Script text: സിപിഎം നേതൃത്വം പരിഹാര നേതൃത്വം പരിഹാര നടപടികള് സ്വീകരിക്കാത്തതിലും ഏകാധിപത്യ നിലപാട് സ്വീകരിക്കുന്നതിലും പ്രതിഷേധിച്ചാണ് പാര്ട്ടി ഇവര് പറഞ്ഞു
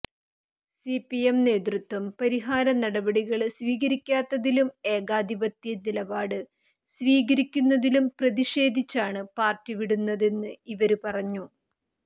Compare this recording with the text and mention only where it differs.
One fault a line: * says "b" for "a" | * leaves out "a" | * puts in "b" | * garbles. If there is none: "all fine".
* leaves out "നേതൃത്വം പരിഹാര"
* puts in "വിടുന്നതെന്ന്"